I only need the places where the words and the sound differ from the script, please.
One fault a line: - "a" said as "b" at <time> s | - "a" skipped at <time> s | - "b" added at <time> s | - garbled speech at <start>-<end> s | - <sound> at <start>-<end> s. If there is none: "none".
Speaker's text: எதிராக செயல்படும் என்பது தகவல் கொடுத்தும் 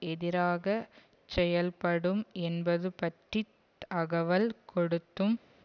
- "பற்றி" added at 2.9 s